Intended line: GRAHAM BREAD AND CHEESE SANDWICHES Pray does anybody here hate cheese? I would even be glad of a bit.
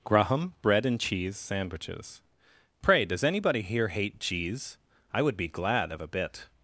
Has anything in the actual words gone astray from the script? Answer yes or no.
yes